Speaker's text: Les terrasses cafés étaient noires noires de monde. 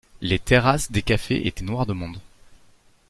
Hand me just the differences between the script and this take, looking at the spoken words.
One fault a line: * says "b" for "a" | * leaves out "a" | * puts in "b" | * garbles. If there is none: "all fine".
* puts in "des"
* leaves out "noires"